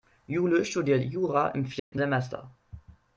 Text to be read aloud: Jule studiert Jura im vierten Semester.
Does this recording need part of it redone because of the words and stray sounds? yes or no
yes